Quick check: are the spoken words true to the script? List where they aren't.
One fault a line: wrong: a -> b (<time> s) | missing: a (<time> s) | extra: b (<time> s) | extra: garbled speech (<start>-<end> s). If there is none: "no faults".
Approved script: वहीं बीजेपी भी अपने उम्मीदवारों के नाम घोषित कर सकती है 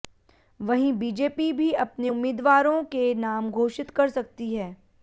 no faults